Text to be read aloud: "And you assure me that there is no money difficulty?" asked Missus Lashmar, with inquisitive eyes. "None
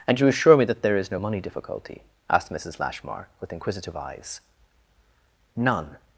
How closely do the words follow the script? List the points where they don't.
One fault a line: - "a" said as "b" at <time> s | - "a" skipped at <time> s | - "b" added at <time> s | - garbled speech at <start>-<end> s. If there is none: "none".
none